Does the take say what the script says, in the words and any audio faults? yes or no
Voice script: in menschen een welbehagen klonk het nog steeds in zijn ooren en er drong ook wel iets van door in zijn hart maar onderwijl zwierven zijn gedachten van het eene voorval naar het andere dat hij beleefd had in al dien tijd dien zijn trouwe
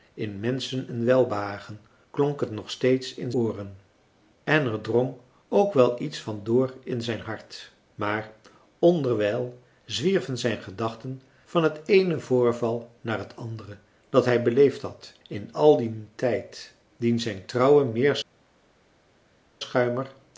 no